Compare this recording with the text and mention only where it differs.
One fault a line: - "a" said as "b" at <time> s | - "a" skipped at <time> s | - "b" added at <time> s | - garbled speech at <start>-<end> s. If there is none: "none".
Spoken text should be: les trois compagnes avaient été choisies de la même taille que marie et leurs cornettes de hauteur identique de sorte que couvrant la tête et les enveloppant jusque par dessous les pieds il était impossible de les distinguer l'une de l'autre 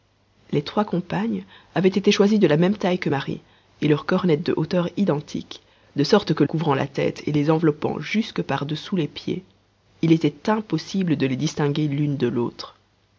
none